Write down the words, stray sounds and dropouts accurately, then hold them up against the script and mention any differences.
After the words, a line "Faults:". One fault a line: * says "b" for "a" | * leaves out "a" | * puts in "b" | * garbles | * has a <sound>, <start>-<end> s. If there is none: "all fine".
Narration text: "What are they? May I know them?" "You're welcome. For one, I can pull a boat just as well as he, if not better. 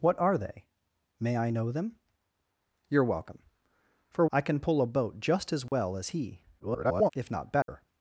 "What are they? May I know them?" "You're welcome. For I can pull a boat just as well as he, [garbled] if not better.
Faults:
* leaves out "one"
* has a dropout, 5.7-5.7 s
* garbles
* has a dropout, 7.6-7.7 s